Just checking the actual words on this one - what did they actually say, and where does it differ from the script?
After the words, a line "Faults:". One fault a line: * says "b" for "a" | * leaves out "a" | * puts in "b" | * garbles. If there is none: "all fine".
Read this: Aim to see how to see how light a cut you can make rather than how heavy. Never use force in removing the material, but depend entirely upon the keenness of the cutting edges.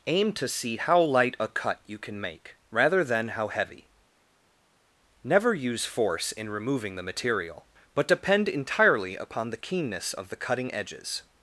Aim to see how light a cut you can make rather than how heavy. Never use force in removing the material, but depend entirely upon the keenness of the cutting edges.
Faults:
* leaves out "to see how"